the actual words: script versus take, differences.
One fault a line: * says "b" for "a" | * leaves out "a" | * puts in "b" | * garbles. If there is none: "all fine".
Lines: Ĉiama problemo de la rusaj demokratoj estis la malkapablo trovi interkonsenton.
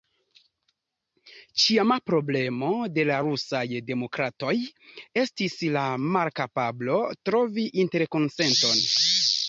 all fine